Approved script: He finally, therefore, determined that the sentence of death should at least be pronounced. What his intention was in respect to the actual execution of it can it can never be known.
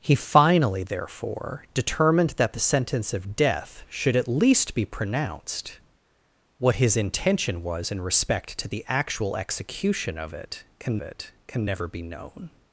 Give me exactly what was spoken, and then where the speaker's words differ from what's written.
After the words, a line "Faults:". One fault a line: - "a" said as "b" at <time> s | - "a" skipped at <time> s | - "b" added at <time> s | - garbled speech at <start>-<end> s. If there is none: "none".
He finally, therefore, determined that the sentence of death should at least be pronounced. What his intention was in respect to the actual execution of it can it can never be known.
Faults:
none